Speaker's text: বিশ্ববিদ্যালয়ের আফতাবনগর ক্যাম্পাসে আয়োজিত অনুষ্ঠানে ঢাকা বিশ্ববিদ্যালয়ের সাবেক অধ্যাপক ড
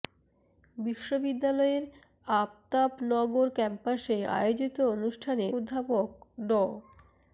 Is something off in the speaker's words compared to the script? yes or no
yes